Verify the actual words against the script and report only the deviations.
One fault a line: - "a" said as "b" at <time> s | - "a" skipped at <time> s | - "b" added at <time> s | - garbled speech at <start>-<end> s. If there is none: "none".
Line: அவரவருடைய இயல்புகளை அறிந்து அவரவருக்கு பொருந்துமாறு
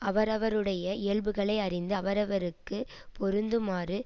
none